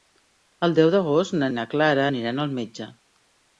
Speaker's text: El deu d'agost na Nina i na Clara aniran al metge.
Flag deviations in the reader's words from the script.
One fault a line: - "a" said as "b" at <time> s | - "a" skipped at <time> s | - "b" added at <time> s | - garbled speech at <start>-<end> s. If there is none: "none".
- "Nina" skipped at 1.5 s